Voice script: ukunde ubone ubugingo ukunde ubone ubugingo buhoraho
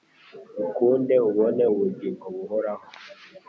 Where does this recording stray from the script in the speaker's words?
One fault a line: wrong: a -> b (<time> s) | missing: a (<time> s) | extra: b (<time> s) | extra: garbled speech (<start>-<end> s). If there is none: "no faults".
missing: ukunde ubone ubugingo (2.3 s)